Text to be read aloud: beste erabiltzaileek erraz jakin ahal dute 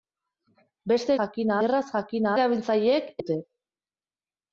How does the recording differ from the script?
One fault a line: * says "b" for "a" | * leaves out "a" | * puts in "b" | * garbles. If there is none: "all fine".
* says "jakin" for "erabiltzaileek"
* says "erabiltzaileek" for "ahal"